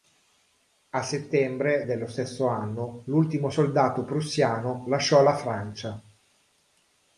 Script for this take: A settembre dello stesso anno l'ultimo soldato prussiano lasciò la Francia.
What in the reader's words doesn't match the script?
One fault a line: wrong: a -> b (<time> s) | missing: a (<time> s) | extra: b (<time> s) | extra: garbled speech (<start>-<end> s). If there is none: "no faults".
no faults